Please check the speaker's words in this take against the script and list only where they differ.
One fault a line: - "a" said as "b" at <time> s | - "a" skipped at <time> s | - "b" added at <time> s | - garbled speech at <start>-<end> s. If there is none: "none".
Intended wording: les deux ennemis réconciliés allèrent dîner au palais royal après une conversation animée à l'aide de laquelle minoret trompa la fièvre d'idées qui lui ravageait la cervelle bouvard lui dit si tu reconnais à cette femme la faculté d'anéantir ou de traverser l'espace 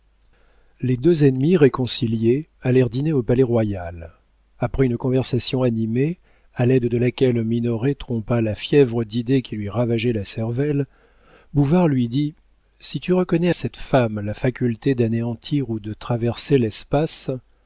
- "à" skipped at 13.5 s